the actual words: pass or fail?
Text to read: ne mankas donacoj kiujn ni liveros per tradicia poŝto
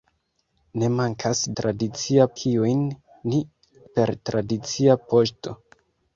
fail